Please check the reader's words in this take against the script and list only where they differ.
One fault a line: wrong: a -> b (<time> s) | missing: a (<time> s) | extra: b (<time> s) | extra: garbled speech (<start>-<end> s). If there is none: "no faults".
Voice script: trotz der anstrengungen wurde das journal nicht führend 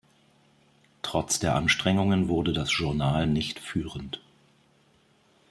no faults